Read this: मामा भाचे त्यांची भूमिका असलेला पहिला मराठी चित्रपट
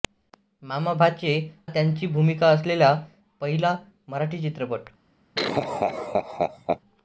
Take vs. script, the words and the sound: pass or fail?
fail